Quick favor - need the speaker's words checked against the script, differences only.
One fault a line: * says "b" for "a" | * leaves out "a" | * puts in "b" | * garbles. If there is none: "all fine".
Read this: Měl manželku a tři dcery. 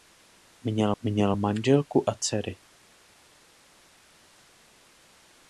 * puts in "měl"
* leaves out "tři"